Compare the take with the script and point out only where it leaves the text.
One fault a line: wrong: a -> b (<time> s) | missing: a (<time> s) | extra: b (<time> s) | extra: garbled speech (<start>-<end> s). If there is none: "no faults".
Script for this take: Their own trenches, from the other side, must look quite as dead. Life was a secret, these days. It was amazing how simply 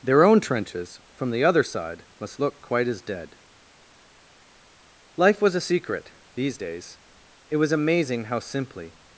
no faults